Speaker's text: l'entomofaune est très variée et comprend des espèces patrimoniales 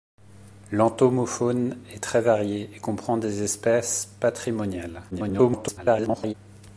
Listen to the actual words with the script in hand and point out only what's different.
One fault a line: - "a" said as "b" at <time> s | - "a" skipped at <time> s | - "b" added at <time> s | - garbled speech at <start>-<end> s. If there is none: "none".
- garbled speech at 5.1-6.3 s